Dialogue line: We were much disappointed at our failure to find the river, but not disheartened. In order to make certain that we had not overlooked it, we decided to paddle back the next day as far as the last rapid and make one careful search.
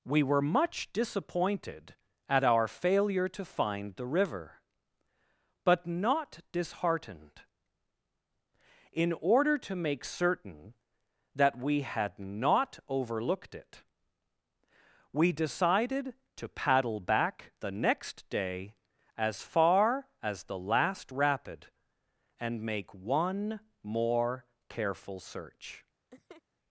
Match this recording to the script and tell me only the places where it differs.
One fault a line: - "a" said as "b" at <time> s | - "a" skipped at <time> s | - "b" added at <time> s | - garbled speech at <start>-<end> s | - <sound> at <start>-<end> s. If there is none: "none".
- "more" added at 23.8 s
- laugh at 26.1-26.4 s